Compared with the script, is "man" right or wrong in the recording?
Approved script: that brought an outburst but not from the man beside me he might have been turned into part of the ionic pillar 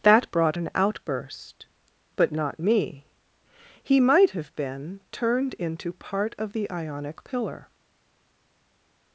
wrong